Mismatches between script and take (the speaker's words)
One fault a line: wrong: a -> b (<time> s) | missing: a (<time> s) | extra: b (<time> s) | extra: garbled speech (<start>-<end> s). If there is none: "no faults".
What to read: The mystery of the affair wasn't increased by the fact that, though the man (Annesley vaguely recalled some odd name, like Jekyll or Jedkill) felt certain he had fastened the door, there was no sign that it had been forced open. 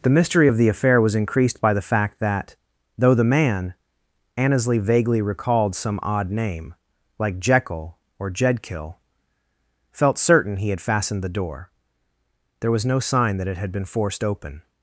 wrong: wasn't -> was (1.0 s)